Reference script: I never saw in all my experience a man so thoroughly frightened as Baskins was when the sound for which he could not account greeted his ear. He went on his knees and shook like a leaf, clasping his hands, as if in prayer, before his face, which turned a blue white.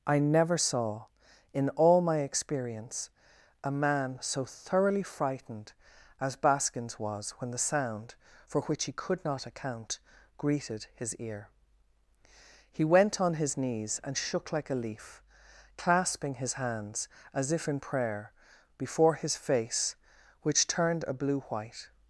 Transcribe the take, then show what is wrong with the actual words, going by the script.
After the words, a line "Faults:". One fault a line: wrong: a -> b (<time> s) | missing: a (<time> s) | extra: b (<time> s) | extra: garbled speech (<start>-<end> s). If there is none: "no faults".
I never saw in all my experience a man so thoroughly frightened as Baskins was when the sound for which he could not account greeted his ear. He went on his knees and shook like a leaf, clasping his hands, as if in prayer, before his face, which turned a blue white.
Faults:
no faults